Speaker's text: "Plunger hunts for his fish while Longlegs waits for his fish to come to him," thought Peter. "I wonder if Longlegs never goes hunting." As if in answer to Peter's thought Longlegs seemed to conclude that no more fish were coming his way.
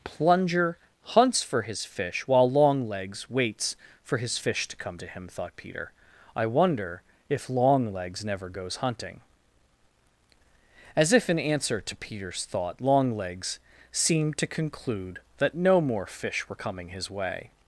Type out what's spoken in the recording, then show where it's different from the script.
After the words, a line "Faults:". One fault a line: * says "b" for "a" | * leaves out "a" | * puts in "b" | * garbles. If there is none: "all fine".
"Plunger hunts for his fish while Longlegs waits for his fish to come to him," thought Peter. "I wonder if Longlegs never goes hunting." As if in answer to Peter's thought Longlegs seemed to conclude that no more fish were coming his way.
Faults:
all fine